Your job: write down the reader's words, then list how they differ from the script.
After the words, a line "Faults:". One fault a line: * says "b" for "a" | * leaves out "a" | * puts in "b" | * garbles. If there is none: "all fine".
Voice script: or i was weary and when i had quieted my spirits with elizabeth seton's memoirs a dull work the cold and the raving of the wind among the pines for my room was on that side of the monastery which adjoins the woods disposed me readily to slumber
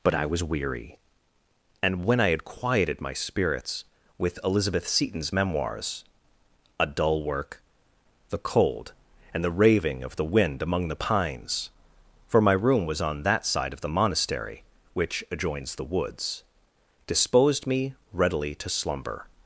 but i was weary and when i had quieted my spirits with elizabeth seton's memoirs a dull work the cold and the raving of the wind among the pines for my room was on that side of the monastery which adjoins the woods disposed me readily to slumber
Faults:
* says "but" for "or"